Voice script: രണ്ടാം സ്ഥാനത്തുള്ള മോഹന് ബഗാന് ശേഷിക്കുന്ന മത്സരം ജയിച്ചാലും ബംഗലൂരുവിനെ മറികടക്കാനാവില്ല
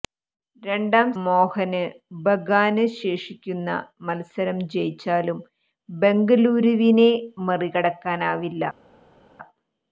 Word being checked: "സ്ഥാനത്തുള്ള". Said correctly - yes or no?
no